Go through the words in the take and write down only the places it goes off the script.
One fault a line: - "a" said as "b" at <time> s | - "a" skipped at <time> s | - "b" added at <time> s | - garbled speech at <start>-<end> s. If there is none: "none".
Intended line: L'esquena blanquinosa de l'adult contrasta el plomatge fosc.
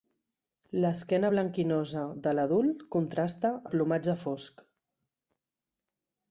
none